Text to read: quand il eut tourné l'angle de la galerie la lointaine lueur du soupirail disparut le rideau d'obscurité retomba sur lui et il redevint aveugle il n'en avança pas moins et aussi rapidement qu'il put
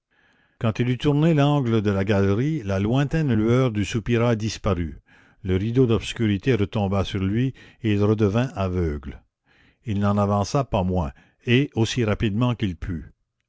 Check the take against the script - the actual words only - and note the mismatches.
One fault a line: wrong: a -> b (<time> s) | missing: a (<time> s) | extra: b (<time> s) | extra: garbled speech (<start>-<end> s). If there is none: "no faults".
no faults